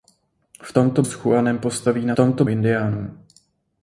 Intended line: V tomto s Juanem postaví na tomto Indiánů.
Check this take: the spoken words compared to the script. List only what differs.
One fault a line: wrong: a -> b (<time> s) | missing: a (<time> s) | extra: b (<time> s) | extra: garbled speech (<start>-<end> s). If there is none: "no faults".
no faults